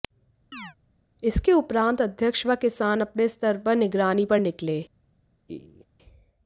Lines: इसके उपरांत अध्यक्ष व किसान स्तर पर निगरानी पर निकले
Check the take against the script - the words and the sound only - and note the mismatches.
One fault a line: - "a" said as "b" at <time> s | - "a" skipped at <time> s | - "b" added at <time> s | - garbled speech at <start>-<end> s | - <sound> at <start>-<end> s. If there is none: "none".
- chirp at 0.5-0.8 s
- "अपने" added at 3.0 s
- laugh at 5.5-5.9 s